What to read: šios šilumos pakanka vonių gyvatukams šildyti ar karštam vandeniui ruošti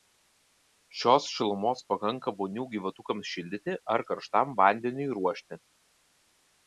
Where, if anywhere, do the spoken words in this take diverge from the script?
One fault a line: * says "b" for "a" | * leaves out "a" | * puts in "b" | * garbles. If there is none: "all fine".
all fine